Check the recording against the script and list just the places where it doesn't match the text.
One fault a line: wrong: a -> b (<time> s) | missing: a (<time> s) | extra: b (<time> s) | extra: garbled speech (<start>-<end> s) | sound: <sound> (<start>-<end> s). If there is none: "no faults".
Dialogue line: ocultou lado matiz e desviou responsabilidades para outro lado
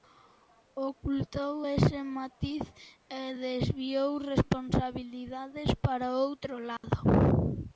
wrong: lado -> ese (1.7 s)
sound: dropout (6.8-6.8 s)